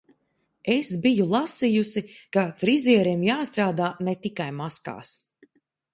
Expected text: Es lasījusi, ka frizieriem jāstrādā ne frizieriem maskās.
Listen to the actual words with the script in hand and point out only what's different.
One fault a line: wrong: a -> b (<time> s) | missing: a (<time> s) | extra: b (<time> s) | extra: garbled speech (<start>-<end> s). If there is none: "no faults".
extra: biju (1.0 s)
wrong: frizieriem -> tikai (4.3 s)